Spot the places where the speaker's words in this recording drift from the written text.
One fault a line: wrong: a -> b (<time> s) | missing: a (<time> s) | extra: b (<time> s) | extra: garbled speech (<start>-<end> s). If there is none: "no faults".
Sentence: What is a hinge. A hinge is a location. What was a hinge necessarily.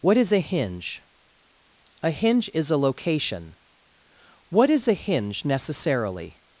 wrong: was -> is (4.7 s)